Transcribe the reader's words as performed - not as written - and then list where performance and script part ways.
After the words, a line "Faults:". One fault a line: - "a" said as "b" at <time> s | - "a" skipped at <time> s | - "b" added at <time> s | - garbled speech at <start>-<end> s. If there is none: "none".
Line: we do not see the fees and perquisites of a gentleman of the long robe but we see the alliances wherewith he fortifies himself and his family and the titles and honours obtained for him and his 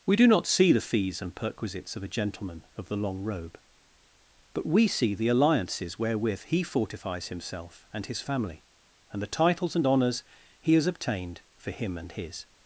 we do not see the fees and perquisites of a gentleman of the long robe but we see the alliances wherewith he fortifies himself and his family and the titles and honours he has obtained for him and his
Faults:
- "he has" added at 10.6 s